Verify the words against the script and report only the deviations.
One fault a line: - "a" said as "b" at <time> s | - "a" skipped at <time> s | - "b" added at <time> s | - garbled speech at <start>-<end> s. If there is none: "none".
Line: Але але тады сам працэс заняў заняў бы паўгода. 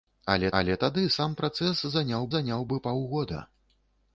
none